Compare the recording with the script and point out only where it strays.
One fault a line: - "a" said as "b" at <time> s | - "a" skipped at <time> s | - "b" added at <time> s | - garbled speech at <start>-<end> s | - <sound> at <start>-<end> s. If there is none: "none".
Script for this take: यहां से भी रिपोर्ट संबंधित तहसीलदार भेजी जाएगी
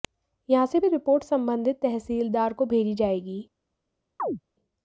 - "को" added at 2.5 s
- chirp at 4.2-4.4 s